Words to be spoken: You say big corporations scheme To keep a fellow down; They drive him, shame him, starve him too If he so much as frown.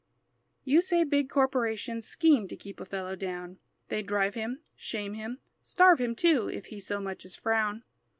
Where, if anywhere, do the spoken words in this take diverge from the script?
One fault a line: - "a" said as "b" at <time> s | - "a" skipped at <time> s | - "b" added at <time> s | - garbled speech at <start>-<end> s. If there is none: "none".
none